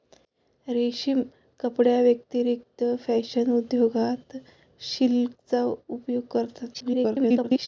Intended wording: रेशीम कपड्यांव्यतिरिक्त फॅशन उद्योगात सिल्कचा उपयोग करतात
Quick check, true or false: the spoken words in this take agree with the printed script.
false